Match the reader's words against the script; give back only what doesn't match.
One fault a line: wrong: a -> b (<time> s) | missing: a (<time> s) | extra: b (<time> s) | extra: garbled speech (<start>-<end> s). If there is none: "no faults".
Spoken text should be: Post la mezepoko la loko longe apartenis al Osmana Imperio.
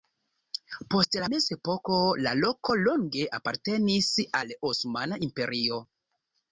no faults